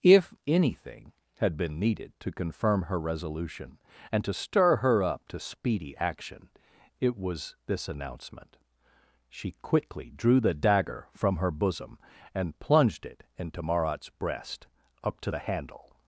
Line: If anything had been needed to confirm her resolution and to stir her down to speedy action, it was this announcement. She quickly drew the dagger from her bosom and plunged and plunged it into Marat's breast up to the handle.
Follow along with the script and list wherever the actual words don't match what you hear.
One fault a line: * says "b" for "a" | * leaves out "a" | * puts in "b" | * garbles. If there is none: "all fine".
* says "up" for "down"
* leaves out "and plunged"